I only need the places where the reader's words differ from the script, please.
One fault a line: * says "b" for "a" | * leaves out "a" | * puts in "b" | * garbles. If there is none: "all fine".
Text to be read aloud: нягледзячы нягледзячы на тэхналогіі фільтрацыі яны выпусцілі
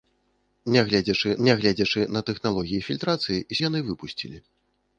all fine